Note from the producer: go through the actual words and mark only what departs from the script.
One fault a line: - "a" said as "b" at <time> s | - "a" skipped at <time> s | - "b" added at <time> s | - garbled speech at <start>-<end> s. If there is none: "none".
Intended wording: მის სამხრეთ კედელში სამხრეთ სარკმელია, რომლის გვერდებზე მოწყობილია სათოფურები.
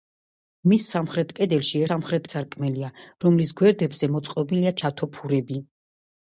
none